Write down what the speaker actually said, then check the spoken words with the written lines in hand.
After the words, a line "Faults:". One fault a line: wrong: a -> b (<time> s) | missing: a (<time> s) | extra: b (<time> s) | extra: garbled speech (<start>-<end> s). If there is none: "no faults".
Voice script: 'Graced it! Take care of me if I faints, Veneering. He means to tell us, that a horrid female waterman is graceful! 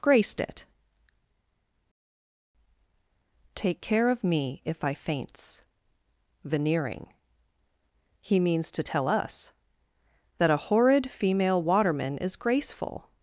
'Graced it! Take care of me if I faints, Veneering. He means to tell us, that a horrid female waterman is graceful!
Faults:
no faults